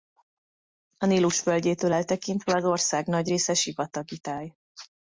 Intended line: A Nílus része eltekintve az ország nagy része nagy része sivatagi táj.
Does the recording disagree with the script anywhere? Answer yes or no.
yes